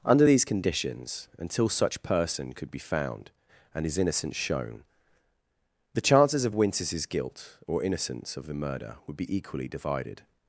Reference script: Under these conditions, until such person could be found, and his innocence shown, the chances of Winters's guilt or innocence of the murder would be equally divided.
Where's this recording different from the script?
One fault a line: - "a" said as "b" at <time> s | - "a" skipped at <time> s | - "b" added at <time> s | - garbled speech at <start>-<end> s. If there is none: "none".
none